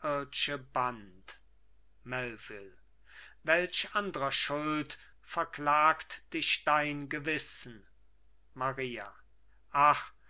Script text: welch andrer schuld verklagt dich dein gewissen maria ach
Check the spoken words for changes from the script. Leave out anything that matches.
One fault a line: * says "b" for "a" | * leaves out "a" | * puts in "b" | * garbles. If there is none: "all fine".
all fine